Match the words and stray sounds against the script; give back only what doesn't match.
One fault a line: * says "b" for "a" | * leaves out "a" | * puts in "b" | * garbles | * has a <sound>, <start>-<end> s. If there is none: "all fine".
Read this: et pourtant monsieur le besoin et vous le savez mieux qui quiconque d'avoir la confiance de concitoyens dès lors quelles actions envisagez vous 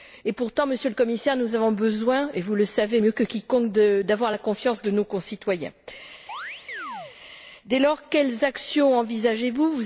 * puts in "commissaire nous avons"
* says "que" for "qui"
* puts in "nos"
* has a chirp, 6.3-7.2 s